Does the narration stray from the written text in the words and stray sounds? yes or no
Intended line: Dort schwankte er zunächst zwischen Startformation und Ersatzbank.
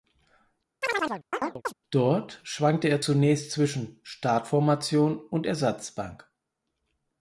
yes